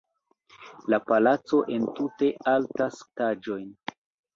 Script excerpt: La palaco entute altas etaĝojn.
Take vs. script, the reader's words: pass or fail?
pass